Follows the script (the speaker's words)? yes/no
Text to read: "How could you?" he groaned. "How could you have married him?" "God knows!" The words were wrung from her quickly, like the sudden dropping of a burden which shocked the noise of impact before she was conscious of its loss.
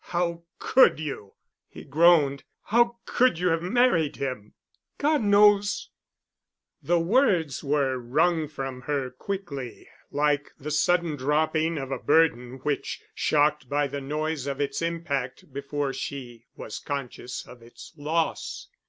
no